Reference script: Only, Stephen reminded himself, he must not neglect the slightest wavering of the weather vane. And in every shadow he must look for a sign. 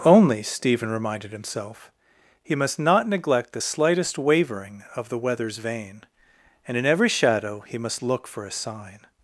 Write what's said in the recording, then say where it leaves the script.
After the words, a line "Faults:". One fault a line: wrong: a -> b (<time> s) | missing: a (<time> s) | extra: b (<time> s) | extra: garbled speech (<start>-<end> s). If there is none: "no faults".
Only, Stephen reminded himself, he must not neglect the slightest wavering of the weathers vane. And in every shadow he must look for a sign.
Faults:
wrong: weather -> weathers (5.2 s)